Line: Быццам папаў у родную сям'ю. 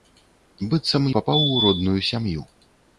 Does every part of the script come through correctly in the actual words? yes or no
yes